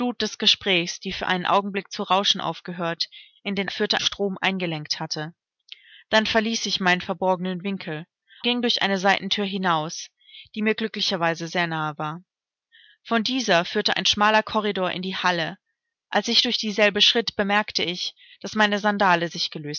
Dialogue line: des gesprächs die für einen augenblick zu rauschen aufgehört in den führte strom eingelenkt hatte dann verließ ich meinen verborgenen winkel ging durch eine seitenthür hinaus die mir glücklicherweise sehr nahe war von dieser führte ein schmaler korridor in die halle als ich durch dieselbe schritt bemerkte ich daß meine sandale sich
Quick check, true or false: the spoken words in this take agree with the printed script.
true